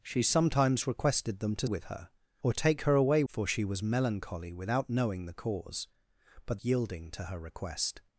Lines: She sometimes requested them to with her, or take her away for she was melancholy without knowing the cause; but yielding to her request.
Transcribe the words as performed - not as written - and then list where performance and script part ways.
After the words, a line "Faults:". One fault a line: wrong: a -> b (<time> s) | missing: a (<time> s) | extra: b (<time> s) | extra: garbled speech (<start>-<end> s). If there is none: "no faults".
She sometimes requested them to with her, or take her away for she was melancholy without knowing the cause; but yielding to her request.
Faults:
no faults